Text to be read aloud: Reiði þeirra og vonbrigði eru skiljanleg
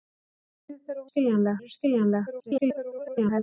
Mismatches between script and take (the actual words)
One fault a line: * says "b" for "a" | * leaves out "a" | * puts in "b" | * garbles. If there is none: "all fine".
* says "skiljanleg" for "vonbrigði"
* garbles